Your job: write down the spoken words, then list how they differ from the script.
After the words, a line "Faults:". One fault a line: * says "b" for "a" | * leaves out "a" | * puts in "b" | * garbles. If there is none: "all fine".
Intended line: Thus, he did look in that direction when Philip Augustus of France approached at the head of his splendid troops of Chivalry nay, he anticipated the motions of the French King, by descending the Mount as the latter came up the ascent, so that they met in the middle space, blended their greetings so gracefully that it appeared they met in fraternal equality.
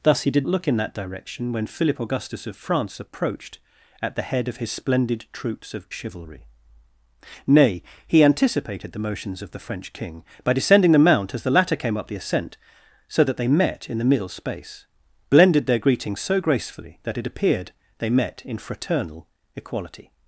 Thus, he did look in that direction when Philip Augustus of France approached at the head of his splendid troops of Chivalry nay, he anticipated the motions of the French King, by descending the Mount as the latter came up the ascent, so that they met in the middle space, blended their greetings so gracefully that it appeared they met in fraternal equality.
Faults:
all fine